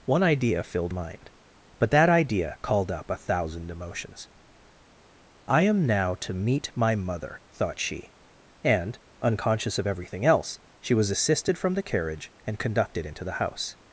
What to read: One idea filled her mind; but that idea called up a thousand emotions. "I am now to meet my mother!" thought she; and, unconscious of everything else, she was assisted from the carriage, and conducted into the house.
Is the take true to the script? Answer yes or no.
no